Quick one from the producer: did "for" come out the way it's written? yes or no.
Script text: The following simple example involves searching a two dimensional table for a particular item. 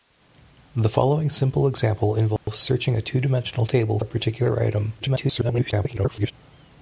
no